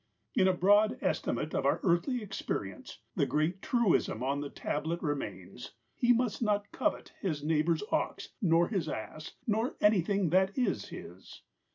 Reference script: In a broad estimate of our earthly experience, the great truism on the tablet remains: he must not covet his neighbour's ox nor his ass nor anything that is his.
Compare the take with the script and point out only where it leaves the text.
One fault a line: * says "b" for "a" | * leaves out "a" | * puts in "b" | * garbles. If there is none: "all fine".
all fine